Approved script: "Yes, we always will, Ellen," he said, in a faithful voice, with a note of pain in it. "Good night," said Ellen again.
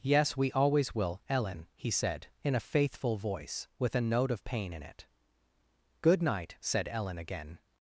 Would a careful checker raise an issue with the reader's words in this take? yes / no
no